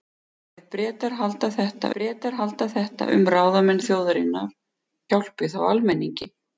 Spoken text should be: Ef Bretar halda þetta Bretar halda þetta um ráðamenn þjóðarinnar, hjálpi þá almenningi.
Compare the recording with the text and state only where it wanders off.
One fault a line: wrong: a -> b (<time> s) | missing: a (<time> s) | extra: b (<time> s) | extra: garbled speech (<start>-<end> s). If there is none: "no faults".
no faults